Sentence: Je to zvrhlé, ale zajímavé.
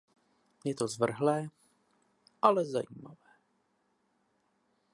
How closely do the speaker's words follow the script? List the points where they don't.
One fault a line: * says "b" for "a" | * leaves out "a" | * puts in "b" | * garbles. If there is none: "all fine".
all fine